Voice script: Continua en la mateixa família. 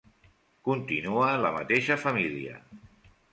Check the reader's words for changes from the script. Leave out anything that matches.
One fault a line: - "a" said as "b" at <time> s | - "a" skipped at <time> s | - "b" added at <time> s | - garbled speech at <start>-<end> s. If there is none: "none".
none